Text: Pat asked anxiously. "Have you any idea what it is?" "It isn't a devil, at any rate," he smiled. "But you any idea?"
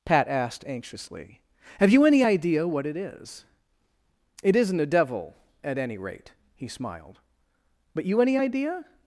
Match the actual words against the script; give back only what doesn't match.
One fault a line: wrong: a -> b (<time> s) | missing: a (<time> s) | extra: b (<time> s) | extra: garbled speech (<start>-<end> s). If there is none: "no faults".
no faults